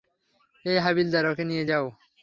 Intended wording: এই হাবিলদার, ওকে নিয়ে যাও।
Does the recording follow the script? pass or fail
pass